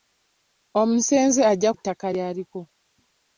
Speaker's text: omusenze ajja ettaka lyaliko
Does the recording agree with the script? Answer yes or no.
yes